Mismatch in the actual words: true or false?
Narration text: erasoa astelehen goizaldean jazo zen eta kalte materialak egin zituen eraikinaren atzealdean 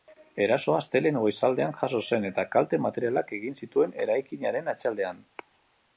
false